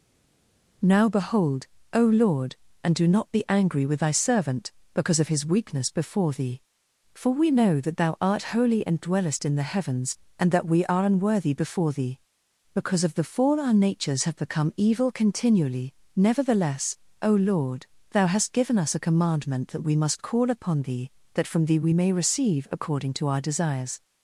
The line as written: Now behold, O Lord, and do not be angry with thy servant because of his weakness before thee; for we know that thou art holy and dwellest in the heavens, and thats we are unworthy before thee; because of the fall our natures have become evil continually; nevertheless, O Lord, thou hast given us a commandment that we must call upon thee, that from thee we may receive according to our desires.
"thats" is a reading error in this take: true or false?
true